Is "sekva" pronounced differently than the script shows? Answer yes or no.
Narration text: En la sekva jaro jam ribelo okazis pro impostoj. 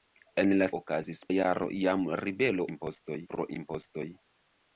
yes